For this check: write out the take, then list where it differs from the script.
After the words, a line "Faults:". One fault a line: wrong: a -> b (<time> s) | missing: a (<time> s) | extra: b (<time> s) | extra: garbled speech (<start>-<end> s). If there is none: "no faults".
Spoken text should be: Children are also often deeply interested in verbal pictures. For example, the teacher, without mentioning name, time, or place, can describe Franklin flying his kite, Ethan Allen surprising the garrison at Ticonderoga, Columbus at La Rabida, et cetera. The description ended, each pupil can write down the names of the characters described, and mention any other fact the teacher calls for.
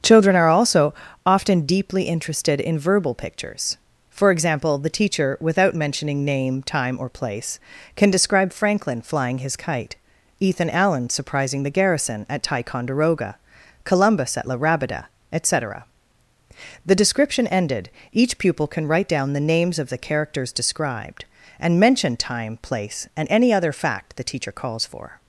Children are also often deeply interested in verbal pictures. For example, the teacher, without mentioning name, time, or place, can describe Franklin flying his kite, Ethan Allen surprising the garrison at Ticonderoga, Columbus at La Rabida, et cetera. The description ended, each pupil can write down the names of the characters described, and mention time, place, and any other fact the teacher calls for.
Faults:
extra: time place and (22.2 s)